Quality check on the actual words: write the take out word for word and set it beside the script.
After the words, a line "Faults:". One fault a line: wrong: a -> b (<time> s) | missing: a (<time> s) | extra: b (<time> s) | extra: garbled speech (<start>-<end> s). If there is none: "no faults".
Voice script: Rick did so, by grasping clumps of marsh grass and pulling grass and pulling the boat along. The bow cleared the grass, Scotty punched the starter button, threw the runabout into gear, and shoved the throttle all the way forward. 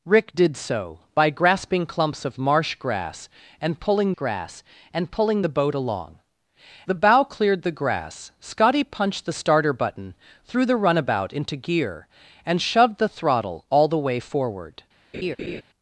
Rick did so, by grasping clumps of marsh grass and pulling grass and pulling the boat along. The bow cleared the grass, Scotty punched the starter button, threw the runabout into gear, and shoved the throttle all the way forward.
Faults:
no faults